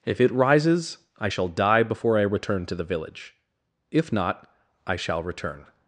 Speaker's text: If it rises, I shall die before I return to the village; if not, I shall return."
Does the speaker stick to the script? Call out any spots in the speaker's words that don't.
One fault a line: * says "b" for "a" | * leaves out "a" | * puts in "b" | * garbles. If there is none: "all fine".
all fine